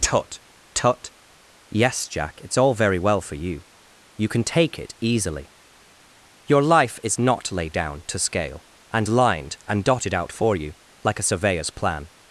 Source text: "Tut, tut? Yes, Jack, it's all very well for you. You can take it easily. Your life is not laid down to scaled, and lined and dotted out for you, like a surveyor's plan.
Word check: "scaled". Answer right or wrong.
wrong